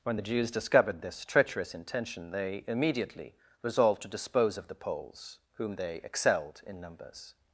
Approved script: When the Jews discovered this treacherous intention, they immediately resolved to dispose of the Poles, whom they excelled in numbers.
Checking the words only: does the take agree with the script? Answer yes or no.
yes